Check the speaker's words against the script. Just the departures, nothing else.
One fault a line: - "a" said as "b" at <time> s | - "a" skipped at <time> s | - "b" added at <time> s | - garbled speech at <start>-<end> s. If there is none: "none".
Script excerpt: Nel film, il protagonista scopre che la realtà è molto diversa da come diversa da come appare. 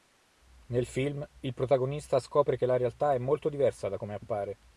- "diversa da come" skipped at 4.1 s